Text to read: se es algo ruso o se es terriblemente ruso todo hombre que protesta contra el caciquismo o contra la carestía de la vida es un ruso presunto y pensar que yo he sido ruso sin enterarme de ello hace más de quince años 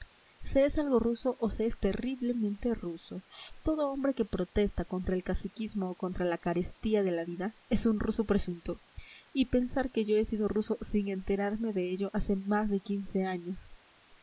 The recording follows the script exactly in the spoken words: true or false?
true